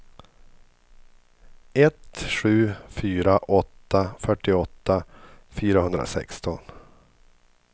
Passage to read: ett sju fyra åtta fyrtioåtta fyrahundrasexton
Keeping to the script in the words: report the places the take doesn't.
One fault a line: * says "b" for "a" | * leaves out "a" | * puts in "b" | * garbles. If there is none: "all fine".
all fine